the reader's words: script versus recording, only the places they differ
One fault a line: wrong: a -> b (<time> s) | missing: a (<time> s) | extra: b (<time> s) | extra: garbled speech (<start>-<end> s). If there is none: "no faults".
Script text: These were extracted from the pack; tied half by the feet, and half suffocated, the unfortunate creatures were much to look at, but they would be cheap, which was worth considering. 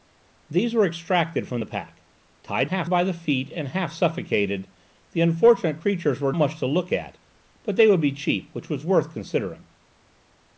no faults